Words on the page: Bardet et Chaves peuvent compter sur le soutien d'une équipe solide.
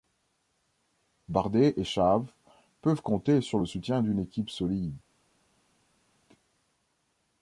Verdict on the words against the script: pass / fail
pass